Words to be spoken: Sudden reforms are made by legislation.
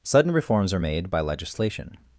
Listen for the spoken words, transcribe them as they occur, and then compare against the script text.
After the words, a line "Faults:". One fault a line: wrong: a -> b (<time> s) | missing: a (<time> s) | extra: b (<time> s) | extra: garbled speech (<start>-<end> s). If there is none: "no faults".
Sudden reforms are made by legislation.
Faults:
no faults